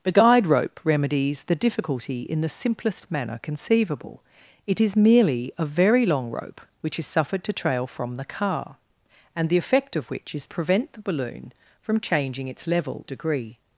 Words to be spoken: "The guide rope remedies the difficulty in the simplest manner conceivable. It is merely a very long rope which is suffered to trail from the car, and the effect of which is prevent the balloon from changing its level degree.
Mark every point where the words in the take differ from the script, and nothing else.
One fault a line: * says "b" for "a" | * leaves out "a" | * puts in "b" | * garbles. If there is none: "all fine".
all fine